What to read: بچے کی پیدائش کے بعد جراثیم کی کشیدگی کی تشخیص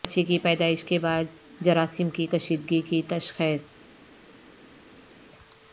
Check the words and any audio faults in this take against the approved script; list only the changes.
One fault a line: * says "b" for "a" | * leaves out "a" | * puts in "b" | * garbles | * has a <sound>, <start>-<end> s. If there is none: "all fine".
all fine